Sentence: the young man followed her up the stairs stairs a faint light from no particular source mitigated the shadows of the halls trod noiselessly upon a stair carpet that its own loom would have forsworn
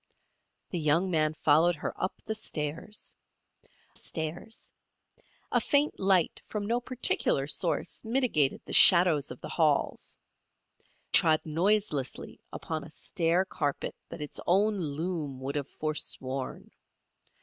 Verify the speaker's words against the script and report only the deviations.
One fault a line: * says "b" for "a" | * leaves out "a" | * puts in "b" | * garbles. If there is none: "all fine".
all fine